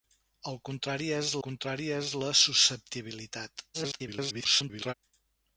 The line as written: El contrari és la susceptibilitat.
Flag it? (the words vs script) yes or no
yes